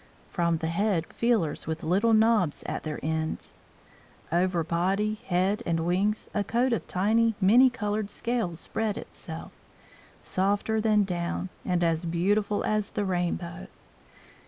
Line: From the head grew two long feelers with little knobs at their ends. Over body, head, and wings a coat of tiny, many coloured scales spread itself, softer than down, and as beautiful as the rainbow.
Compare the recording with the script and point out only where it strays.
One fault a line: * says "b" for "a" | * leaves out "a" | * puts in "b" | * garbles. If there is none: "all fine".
* leaves out "grew two long"